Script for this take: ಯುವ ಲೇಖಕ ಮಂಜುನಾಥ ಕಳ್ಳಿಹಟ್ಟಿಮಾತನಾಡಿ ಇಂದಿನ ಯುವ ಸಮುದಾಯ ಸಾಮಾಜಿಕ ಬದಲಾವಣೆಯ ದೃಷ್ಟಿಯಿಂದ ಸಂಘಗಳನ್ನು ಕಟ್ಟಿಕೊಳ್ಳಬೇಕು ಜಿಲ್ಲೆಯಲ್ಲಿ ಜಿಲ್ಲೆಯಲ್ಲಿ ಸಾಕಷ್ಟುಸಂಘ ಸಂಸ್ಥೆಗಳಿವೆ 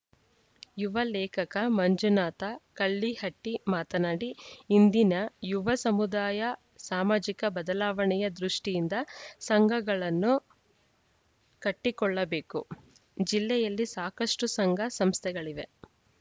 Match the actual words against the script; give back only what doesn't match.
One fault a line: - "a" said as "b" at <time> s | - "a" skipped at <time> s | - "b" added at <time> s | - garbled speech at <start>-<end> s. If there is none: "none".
- "ಜಿಲ್ಲೆಯಲ್ಲಿ" skipped at 13.9 s